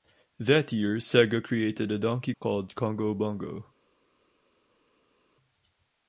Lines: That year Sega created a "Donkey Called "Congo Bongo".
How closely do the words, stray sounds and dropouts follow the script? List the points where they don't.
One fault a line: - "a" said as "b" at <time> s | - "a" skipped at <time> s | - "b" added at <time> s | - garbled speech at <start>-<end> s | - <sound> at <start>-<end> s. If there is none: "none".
none